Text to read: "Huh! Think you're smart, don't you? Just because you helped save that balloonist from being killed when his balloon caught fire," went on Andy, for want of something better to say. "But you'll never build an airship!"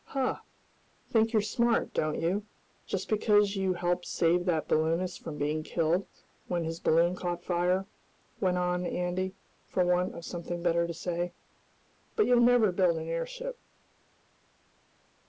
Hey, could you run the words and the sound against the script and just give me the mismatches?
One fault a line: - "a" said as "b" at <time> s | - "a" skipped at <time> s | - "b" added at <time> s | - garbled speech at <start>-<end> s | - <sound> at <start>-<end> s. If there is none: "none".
none